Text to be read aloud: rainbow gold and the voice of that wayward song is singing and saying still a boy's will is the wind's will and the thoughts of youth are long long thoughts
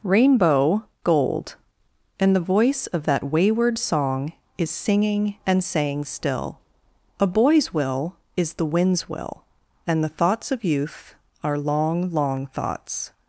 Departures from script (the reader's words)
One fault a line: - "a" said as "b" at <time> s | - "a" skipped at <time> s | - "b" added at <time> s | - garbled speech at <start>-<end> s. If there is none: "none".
none